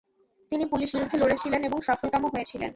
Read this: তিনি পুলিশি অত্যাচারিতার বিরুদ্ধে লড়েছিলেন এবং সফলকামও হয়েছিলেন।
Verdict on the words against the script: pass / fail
fail